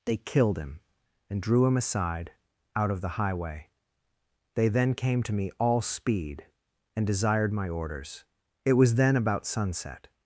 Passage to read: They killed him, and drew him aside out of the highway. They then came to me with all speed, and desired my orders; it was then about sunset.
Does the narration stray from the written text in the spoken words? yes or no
yes